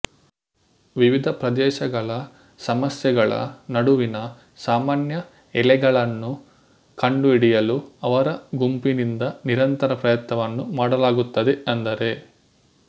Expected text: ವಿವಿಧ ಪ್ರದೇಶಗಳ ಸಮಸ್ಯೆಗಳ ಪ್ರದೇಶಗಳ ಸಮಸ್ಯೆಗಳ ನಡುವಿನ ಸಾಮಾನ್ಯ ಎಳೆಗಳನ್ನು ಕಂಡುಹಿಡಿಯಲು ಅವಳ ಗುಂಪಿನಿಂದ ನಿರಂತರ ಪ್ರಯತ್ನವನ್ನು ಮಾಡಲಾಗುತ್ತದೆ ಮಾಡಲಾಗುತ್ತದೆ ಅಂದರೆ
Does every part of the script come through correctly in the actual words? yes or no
no